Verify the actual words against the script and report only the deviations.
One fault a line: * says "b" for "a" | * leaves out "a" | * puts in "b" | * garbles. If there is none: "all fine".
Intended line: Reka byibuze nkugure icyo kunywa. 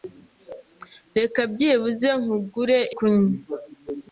* leaves out "icyo"